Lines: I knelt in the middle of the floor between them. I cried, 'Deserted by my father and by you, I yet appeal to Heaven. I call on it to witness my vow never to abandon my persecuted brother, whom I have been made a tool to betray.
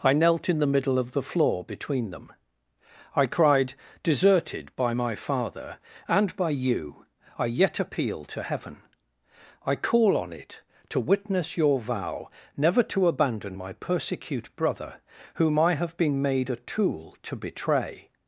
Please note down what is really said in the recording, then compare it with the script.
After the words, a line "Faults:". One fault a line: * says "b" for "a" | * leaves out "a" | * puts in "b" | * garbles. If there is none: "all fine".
I knelt in the middle of the floor between them. I cried, 'Deserted by my father and by you, I yet appeal to Heaven. I call on it to witness your vow never to abandon my persecute brother, whom I have been made a tool to betray.
Faults:
* says "your" for "my"
* says "persecute" for "persecuted"